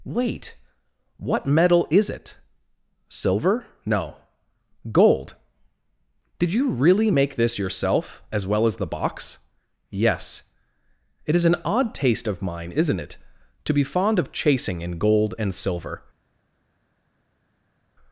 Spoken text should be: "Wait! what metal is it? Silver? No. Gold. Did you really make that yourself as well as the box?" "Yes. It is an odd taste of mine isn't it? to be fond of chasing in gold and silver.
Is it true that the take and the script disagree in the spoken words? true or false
true